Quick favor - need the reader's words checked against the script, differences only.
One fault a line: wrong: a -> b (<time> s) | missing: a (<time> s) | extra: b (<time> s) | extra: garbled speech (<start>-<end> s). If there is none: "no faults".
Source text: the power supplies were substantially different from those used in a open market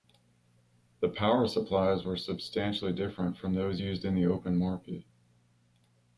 wrong: a -> the (4.1 s)